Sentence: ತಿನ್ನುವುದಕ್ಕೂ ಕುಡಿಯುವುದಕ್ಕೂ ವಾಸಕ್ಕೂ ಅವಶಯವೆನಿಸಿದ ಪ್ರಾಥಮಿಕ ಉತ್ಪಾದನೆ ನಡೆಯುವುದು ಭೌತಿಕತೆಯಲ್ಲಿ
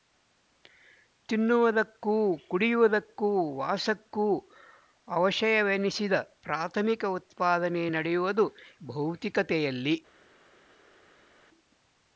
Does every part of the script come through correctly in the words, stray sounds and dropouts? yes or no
yes